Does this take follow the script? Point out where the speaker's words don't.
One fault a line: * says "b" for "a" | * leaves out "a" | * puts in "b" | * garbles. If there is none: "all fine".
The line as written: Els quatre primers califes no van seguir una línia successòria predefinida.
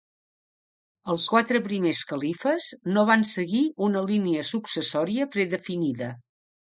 all fine